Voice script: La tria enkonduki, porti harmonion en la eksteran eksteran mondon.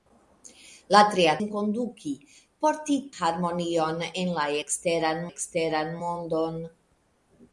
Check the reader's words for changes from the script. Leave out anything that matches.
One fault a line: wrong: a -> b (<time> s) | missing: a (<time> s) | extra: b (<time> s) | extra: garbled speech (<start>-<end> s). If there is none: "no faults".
no faults